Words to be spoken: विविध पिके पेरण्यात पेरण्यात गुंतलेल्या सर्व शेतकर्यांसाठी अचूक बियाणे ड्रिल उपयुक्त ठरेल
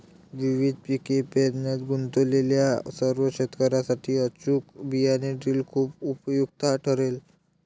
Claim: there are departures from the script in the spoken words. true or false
true